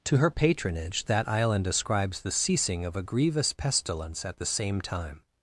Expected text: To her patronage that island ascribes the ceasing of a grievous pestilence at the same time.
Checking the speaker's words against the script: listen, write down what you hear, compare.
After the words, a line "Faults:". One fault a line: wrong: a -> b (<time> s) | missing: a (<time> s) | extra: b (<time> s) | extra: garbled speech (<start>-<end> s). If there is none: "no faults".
To her patronage that island ascribes the ceasing of a grievous pestilence at the same time.
Faults:
no faults